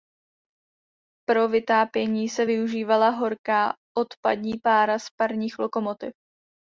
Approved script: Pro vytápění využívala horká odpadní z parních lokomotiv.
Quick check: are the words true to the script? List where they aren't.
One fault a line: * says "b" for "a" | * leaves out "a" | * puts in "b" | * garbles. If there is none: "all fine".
* puts in "se"
* puts in "pára"